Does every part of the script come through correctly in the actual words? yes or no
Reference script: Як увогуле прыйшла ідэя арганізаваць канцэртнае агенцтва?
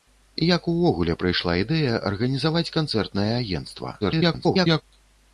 no